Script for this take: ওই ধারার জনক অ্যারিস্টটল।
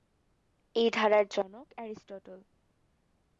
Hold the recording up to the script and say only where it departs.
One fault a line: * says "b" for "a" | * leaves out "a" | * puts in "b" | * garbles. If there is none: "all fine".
* says "এই" for "ওই"